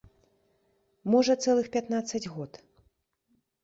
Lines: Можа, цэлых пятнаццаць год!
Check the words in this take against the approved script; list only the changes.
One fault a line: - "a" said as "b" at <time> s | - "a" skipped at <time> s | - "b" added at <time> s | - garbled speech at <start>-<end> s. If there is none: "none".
none